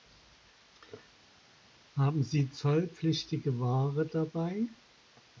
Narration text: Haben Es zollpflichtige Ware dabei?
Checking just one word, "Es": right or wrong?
wrong